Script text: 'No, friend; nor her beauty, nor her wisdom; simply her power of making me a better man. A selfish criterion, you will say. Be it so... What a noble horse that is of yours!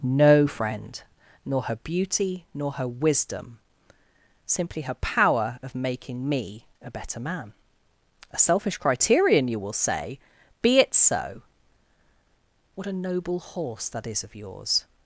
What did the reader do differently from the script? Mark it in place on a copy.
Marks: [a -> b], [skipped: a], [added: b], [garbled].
'No, friend; nor her beauty, nor her wisdom; simply her power of making me a better man. A selfish criterion, you will say. Be it so... What a noble horse that is of yours!